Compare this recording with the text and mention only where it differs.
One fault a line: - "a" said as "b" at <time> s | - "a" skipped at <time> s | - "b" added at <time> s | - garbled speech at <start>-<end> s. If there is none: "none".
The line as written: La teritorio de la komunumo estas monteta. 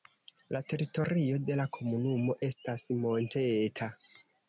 none